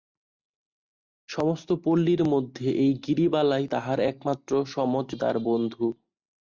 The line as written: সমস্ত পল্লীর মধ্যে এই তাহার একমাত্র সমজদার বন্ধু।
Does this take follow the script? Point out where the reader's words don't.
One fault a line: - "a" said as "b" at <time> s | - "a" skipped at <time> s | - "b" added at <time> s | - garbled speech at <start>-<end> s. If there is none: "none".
- "গিরিবালাই" added at 3.0 s